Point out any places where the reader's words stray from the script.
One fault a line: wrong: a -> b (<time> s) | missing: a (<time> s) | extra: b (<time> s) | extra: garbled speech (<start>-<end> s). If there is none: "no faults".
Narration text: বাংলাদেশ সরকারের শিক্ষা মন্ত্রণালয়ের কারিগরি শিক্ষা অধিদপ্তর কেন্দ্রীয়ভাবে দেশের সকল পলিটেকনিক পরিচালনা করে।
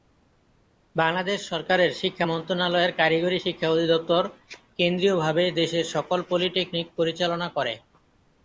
no faults